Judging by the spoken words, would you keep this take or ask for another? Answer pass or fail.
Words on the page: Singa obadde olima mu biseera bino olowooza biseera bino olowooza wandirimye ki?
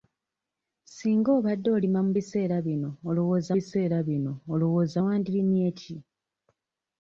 pass